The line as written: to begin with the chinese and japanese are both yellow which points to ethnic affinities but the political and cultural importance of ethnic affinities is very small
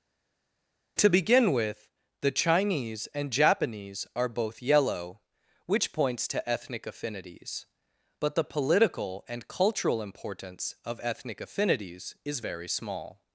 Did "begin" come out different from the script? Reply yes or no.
no